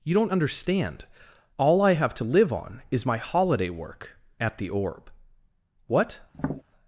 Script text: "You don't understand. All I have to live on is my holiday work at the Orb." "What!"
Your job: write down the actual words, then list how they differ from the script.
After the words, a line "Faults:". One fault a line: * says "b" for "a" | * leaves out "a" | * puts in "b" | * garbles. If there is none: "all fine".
"You don't understand. All I have to live on is my holiday work at the Orb." "What!"
Faults:
all fine